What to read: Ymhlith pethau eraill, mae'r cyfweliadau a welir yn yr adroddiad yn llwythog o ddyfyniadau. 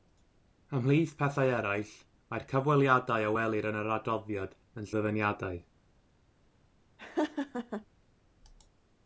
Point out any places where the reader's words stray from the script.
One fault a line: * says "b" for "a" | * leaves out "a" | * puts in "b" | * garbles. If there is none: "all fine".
* leaves out "llwythog"